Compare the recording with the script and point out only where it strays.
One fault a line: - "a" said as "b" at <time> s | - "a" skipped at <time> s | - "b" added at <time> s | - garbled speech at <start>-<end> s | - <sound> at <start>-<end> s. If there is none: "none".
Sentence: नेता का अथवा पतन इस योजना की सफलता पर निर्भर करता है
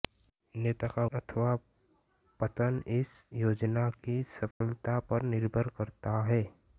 - dropout at 4.5-4.6 s